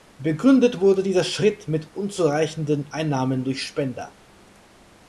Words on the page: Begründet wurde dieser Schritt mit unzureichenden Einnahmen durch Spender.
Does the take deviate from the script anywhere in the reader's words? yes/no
no